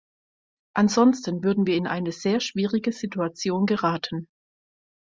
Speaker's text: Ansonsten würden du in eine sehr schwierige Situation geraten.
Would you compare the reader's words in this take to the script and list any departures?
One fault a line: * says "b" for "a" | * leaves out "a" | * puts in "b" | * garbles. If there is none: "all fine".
* says "wir" for "du"